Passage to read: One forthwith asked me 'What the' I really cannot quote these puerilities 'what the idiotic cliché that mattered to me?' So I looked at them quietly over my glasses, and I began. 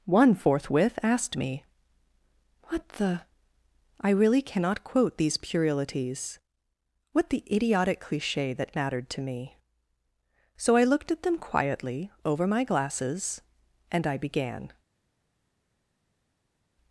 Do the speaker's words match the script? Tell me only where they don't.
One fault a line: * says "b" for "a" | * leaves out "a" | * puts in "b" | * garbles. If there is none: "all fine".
all fine